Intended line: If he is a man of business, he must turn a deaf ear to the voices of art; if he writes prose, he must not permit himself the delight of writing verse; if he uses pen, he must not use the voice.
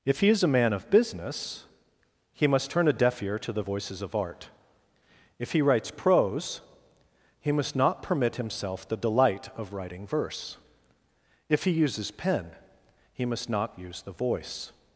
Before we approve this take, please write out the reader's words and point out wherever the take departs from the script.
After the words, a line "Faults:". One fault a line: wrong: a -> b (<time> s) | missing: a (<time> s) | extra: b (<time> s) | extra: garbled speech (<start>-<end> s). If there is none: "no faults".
If he is a man of business, he must turn a deaf ear to the voices of art; if he writes prose, he must not permit himself the delight of writing verse; if he uses pen, he must not use the voice.
Faults:
no faults